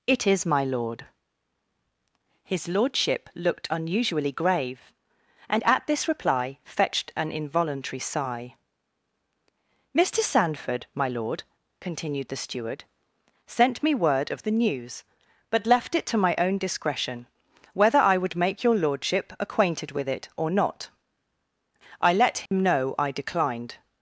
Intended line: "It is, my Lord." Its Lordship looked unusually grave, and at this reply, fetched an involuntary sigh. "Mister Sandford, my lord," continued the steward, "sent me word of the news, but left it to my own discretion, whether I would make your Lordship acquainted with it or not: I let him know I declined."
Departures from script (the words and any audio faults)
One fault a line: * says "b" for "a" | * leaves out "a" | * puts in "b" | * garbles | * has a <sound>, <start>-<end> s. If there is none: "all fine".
* says "His" for "Its"
* has a dropout, 22.5-22.5 s